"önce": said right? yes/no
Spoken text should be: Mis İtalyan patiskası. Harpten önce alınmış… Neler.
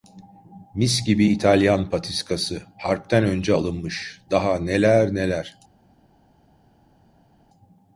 yes